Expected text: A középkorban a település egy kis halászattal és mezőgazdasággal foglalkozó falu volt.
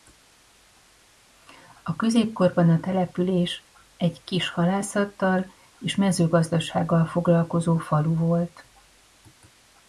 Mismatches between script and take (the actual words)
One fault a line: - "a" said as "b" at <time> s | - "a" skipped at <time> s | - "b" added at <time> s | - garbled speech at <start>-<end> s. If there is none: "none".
none